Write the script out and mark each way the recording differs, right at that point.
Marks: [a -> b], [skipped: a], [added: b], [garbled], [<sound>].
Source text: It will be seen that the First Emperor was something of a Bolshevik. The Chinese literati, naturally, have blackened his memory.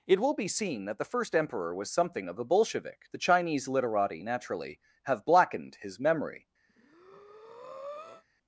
It will be seen that the First Emperor was something of a Bolshevik. The Chinese literati, naturally, have blackened his memory. [breath]